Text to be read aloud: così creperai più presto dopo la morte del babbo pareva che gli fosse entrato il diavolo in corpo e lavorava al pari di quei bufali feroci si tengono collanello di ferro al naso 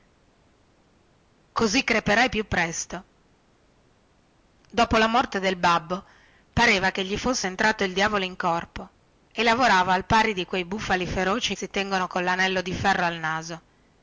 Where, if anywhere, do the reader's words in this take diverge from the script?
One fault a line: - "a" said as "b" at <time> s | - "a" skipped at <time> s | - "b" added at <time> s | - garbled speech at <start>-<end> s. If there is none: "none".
none